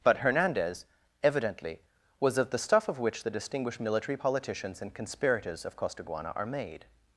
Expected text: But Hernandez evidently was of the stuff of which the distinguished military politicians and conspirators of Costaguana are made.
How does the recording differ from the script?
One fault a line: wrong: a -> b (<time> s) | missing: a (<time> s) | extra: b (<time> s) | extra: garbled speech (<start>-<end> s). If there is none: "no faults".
no faults